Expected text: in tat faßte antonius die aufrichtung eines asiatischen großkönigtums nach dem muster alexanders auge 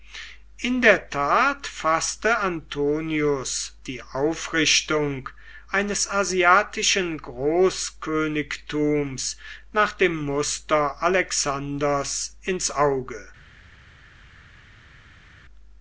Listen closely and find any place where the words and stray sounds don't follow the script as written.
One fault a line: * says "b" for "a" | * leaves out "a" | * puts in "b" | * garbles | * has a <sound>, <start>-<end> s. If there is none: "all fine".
* puts in "der"
* puts in "ins"